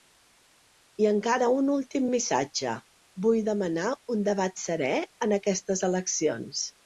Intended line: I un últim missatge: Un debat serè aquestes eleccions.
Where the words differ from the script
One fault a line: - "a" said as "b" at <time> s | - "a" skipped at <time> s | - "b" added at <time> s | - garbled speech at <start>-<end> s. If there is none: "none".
- "encara" added at 1.1 s
- "Vull demanar" added at 3.3 s
- "en" added at 5.3 s